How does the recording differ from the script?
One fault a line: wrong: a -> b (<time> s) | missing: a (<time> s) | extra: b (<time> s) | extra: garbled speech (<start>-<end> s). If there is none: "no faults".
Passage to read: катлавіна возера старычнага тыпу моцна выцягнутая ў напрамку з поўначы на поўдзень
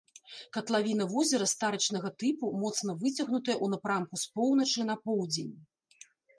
no faults